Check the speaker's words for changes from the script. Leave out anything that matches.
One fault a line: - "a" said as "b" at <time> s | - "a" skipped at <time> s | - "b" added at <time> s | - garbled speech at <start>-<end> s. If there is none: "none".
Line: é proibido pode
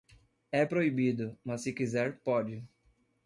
- "mas se quiser" added at 1.4 s